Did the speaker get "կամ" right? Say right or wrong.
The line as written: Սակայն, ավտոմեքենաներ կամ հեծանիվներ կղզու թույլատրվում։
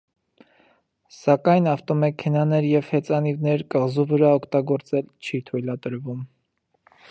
wrong